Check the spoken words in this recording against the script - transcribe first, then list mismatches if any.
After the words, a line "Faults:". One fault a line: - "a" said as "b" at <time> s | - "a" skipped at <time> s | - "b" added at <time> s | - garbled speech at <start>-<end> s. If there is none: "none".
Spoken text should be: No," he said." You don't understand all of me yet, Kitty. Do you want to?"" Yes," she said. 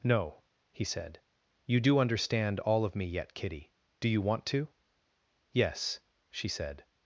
No," he said." You do understand all of me yet, Kitty. Do you want to?"" Yes," she said.
Faults:
- "don't" said as "do" at 1.8 s